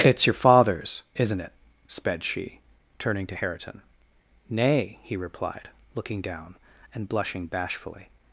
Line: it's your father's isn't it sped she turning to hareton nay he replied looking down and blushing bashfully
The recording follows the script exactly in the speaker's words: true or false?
true